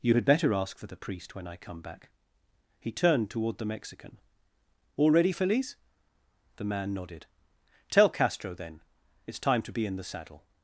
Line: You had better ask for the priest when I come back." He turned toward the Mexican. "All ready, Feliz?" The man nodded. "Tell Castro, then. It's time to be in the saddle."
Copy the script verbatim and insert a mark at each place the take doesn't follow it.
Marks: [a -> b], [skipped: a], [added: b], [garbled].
You had better ask for the priest when I come back." He turned toward the Mexican. "All ready, Feliz?" The man nodded. "Tell Castro, then. It's time to be in the saddle."